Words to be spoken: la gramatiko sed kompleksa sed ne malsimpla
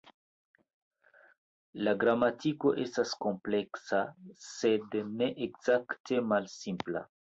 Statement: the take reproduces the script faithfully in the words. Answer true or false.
false